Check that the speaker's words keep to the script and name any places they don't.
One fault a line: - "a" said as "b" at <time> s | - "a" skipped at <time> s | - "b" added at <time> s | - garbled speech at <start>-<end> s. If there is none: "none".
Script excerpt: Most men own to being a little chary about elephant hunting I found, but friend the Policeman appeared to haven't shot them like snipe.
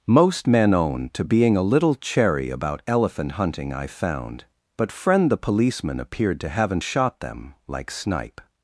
none